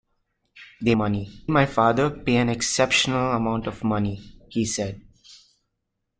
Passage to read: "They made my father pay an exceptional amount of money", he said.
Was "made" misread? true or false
true